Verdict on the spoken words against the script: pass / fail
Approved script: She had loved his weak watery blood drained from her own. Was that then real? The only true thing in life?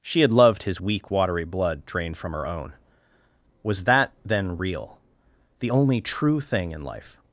pass